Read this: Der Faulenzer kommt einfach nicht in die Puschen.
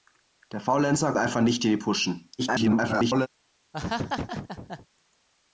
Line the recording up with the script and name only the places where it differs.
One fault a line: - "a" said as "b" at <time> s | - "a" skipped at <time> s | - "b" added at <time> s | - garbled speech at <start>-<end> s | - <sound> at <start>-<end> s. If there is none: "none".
- "kommt" skipped at 1.1 s
- garbled speech at 2.4-3.3 s
- laugh at 3.7-4.9 s